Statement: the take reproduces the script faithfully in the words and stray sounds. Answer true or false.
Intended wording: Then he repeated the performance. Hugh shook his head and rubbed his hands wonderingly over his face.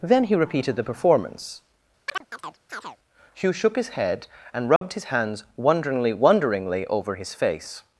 false